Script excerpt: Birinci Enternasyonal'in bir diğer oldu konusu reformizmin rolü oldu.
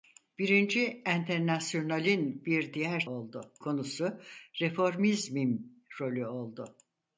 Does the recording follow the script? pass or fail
pass